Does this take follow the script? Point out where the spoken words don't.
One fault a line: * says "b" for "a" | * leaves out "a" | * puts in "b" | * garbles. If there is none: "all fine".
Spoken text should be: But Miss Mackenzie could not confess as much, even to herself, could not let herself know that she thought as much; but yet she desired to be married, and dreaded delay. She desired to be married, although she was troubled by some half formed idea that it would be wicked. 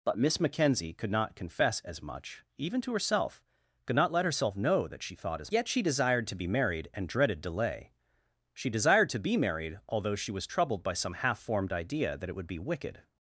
* leaves out "much but"